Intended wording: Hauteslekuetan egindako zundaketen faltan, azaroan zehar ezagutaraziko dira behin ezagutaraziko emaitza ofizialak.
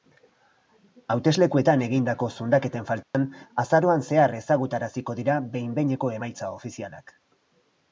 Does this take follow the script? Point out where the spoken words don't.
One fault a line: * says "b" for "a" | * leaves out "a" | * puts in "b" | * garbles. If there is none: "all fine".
* says "behineko" for "ezagutaraziko"